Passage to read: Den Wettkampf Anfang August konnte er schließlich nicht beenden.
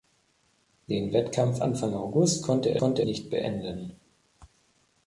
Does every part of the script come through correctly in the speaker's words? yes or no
no